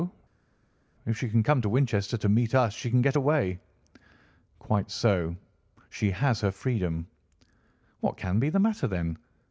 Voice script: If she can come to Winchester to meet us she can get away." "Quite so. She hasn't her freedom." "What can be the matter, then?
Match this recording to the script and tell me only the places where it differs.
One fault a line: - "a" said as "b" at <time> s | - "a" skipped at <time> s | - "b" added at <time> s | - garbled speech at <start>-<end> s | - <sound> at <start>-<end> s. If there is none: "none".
- "hasn't" said as "has" at 6.1 s